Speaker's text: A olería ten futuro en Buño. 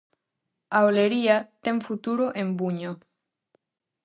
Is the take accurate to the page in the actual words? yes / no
yes